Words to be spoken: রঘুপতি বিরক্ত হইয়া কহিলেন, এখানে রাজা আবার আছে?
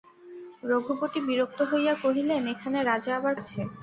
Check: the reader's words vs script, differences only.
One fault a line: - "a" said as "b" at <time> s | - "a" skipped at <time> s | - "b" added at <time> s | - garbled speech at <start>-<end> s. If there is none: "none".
none